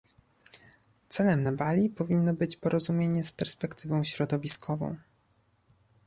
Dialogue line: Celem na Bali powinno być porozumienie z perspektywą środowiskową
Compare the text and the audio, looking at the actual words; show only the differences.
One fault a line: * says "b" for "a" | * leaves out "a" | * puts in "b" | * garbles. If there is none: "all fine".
all fine